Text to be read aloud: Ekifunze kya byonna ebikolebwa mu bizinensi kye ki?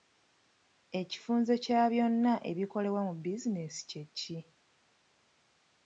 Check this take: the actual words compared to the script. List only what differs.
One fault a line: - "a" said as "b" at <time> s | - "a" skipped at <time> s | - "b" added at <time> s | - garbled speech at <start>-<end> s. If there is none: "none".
none